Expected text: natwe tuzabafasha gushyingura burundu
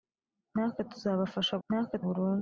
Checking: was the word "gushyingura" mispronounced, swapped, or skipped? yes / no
yes